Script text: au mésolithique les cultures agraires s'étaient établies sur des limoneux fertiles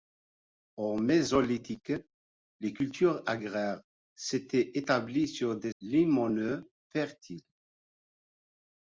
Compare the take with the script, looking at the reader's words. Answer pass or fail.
pass